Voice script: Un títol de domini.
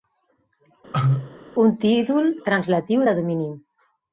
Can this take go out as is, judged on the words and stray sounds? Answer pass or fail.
fail